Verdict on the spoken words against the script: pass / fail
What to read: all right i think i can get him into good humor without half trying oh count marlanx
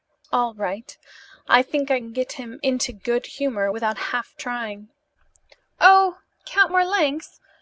pass